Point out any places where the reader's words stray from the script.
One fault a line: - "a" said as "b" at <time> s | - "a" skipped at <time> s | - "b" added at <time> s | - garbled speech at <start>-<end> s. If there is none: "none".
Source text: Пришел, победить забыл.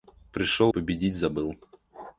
none